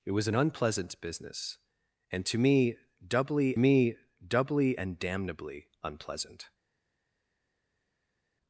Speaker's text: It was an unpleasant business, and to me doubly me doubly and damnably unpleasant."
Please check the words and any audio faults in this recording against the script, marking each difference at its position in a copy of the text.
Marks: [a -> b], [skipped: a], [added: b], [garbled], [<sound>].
It was an unpleasant business, and to me doubly me doubly and damnably unpleasant."